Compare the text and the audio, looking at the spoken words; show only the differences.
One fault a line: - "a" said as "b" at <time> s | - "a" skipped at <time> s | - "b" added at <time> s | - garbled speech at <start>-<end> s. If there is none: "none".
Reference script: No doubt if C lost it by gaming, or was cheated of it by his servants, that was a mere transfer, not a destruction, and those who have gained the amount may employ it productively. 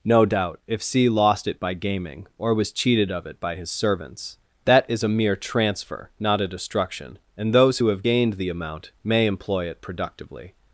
- "was" said as "is" at 4.9 s